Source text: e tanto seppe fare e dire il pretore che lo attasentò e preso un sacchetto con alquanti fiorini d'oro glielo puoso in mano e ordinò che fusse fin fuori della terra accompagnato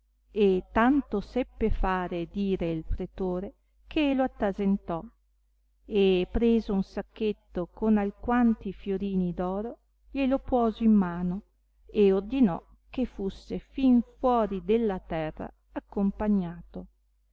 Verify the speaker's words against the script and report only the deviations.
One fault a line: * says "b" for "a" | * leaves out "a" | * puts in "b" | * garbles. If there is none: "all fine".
all fine